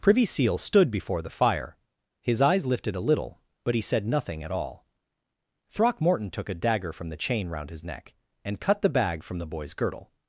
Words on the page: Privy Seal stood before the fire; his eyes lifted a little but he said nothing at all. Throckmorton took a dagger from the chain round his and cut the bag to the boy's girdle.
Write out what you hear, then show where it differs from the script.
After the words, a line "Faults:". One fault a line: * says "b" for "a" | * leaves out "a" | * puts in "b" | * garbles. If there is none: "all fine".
Privy Seal stood before the fire; his eyes lifted a little but he said nothing at all. Throckmorton took a dagger from the chain round his neck, and cut the bag from the boy's girdle.
Faults:
* puts in "neck"
* says "from" for "to"